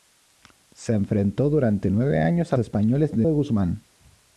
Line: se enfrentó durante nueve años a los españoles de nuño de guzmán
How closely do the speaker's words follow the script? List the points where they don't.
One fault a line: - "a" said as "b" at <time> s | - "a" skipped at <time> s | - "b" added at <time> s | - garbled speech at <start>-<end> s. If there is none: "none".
- "los" skipped at 2.6 s
- "nuño" skipped at 3.3 s